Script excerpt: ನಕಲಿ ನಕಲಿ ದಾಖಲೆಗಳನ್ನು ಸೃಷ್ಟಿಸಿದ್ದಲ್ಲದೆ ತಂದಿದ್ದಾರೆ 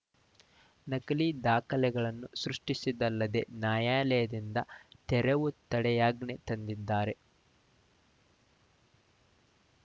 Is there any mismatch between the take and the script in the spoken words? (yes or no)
yes